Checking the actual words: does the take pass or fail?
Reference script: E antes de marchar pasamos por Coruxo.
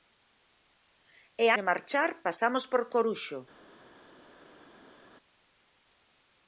fail